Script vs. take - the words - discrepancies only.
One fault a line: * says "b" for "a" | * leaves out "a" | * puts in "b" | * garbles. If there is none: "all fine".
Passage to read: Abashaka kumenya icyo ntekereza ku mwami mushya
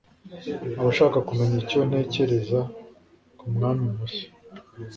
all fine